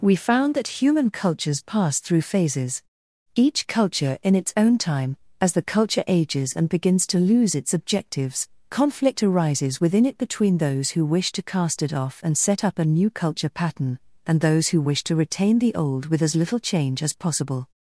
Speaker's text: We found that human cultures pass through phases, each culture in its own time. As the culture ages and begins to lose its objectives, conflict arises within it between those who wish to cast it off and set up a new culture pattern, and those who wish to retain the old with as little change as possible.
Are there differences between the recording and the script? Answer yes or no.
no